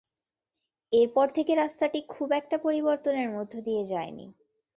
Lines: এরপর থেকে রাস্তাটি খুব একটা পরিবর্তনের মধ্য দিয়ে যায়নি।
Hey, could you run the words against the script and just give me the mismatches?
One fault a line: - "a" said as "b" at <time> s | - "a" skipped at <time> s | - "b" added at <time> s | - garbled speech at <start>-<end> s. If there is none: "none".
none